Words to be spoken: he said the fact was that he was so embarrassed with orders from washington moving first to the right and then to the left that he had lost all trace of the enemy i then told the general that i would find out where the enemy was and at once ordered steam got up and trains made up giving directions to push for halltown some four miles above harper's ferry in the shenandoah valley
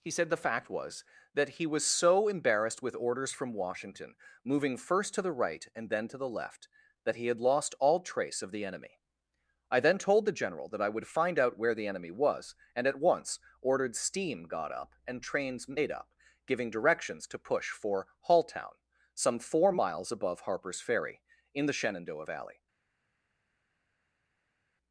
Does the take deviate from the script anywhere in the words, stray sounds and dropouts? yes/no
no